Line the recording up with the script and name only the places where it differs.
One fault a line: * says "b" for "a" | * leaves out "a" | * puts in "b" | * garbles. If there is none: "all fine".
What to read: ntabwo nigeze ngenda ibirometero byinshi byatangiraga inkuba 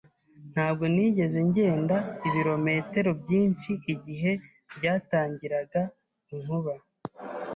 * puts in "igihe"